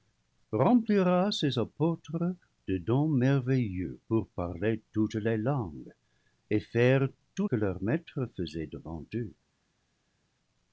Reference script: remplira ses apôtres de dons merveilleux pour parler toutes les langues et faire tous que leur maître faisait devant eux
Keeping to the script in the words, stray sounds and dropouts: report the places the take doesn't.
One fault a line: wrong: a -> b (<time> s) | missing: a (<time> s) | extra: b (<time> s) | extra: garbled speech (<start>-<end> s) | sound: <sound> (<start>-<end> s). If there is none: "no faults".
no faults